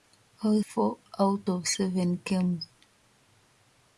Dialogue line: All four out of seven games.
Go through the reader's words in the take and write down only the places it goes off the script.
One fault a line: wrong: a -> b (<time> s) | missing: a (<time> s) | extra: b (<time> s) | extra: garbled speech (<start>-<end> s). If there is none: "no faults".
no faults